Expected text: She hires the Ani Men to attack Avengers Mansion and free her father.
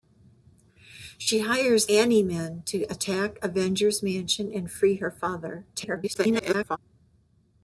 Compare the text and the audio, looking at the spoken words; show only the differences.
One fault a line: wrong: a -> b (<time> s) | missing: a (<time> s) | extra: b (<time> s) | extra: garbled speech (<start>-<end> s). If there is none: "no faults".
missing: the (1.9 s)
extra: garbled speech (5.7-6.8 s)